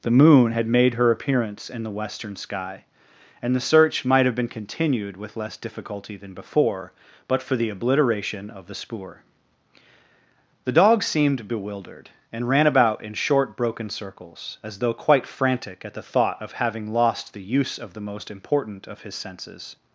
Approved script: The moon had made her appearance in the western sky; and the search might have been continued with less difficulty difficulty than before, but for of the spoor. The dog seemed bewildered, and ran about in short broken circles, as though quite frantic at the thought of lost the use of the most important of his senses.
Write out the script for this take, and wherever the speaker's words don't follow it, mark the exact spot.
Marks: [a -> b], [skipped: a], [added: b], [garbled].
The moon had made her appearance in the western sky; and the search might have been continued with less difficulty [skipped: difficulty] than before, but for [added: the obliteration] of the spoor. The dog seemed bewildered, and ran about in short broken circles, as though quite frantic at the thought of [added: having] lost the use of the most important of his senses.